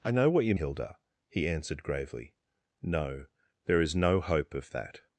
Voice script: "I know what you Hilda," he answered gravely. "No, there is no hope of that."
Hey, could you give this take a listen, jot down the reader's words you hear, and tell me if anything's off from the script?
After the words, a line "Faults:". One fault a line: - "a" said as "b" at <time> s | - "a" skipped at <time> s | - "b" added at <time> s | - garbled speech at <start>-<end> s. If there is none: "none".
"I know what you Hilda," he answered gravely. "No, there is no hope of that."
Faults:
none